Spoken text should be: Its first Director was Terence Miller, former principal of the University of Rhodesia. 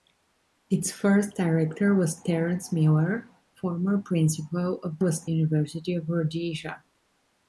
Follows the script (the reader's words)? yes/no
no